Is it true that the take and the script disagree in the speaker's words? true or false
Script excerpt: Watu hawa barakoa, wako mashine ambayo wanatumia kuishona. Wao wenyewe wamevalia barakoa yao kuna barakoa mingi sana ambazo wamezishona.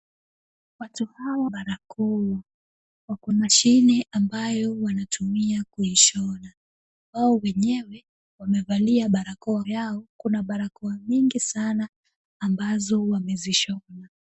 false